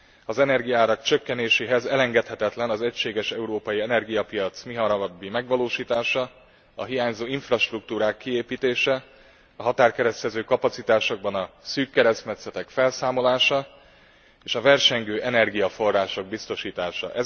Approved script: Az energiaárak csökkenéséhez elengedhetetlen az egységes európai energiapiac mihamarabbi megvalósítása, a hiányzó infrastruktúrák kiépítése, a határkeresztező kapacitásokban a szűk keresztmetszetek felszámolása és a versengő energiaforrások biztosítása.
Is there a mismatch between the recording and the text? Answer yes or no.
no